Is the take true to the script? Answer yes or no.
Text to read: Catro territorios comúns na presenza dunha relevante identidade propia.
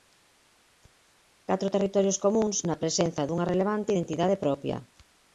yes